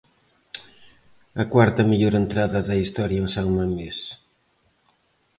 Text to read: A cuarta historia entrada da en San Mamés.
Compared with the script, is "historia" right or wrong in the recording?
wrong